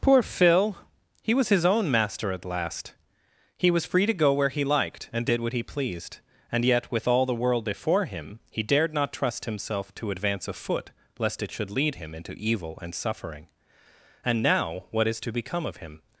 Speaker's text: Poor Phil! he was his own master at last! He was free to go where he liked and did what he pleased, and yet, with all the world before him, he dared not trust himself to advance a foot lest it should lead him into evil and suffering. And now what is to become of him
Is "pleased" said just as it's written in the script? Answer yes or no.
yes